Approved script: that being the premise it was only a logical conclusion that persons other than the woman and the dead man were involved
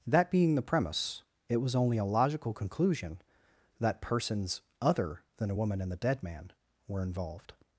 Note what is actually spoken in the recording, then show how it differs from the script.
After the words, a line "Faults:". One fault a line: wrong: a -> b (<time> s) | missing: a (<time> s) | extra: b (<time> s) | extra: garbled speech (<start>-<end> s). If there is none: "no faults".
that being the premise it was only a logical conclusion that persons other than a woman and the dead man were involved
Faults:
wrong: the -> a (5.5 s)